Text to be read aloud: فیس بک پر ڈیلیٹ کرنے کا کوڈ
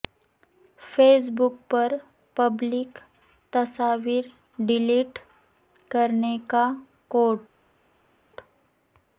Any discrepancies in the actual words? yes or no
yes